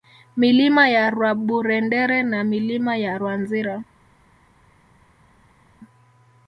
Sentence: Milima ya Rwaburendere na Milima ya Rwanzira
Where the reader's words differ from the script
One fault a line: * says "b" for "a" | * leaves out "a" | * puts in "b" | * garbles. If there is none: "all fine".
all fine